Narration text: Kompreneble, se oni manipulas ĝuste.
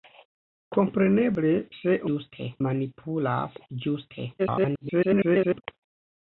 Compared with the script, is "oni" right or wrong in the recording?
wrong